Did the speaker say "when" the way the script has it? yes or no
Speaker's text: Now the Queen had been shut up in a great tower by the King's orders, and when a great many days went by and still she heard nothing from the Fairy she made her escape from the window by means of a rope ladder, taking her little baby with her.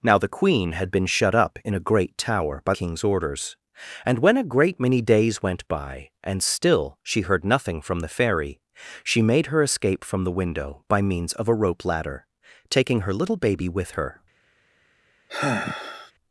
yes